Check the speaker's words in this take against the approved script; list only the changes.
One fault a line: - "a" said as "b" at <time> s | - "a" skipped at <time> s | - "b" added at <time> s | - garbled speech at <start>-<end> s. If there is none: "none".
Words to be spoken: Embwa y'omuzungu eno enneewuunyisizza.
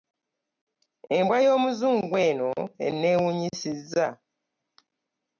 none